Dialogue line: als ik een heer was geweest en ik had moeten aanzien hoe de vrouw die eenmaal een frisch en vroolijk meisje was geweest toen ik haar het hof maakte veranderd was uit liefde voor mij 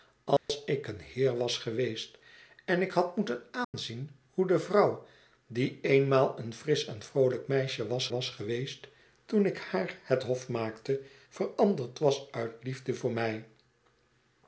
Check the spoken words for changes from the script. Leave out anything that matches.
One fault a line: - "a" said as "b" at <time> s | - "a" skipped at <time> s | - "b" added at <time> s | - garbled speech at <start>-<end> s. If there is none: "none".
- "was" added at 8.1 s